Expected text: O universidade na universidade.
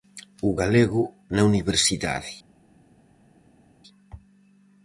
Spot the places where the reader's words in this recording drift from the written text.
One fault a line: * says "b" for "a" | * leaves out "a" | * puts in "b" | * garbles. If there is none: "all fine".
* says "galego" for "universidade"